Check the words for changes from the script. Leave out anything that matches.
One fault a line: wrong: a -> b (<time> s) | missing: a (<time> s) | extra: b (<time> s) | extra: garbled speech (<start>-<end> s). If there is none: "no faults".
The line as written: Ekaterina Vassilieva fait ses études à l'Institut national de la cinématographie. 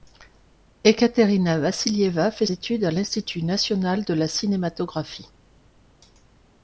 missing: ses (2.5 s)